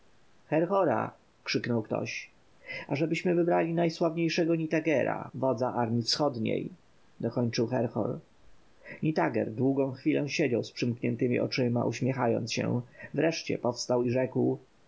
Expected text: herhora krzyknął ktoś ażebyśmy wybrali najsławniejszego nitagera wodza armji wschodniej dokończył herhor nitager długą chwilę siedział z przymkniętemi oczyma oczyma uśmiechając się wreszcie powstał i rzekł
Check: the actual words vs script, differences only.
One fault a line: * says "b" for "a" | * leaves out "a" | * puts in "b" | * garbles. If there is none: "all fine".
* leaves out "oczyma"